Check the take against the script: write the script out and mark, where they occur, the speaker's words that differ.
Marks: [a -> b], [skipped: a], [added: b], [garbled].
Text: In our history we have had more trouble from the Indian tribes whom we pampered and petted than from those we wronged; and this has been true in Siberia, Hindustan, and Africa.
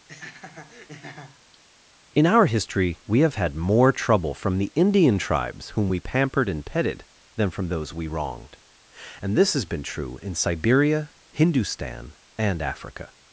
In our history we have had more trouble from the Indian tribes whom we pampered and petted than from those we wronged; and this has been true in Siberia, Hindustan, and Africa.